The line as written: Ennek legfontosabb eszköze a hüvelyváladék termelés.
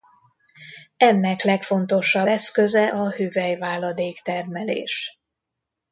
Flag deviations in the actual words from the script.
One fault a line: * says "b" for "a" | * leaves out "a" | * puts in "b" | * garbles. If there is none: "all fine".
all fine